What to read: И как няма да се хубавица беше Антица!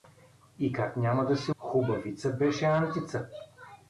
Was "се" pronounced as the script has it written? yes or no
yes